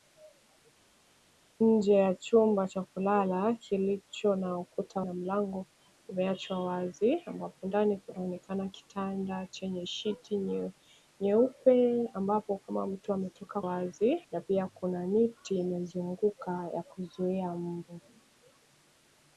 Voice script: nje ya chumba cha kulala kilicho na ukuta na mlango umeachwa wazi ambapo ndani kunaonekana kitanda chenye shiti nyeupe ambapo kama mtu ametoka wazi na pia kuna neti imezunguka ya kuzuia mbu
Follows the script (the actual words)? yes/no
yes